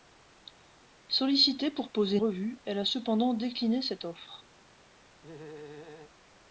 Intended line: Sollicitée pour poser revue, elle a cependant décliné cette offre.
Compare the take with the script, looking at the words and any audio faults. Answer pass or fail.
fail